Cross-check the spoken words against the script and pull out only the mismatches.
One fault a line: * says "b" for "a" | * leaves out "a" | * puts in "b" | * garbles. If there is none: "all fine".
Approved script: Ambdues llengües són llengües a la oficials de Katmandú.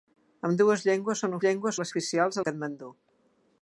all fine